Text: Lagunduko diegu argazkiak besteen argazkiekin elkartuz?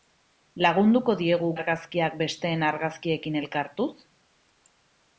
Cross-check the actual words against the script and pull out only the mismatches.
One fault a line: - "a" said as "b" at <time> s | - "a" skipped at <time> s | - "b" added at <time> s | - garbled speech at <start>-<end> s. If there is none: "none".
none